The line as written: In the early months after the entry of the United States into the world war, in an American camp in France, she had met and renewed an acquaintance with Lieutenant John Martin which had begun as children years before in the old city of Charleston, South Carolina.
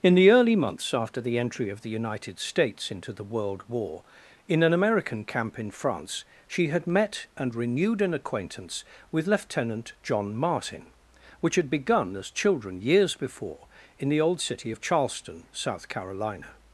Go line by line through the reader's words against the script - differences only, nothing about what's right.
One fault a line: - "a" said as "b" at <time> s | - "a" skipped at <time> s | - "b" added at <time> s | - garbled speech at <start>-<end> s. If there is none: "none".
none